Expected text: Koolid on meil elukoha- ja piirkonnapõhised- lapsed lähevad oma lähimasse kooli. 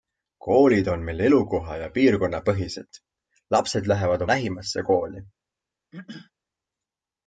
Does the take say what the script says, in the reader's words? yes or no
no